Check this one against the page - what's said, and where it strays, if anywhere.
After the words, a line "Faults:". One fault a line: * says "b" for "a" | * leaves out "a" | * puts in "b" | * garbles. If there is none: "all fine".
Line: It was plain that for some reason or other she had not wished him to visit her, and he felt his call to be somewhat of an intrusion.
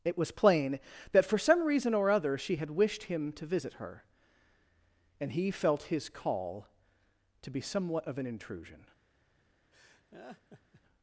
It was plain that for some reason or other she had wished him to visit her, and he felt his call to be somewhat of an intrusion.
Faults:
* leaves out "not"